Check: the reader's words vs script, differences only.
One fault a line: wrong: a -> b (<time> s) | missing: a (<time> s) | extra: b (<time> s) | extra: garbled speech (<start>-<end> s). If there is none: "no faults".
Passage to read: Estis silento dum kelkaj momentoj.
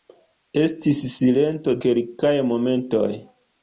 missing: dum (1.7 s)